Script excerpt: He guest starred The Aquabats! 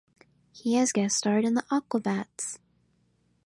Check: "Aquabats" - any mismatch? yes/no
no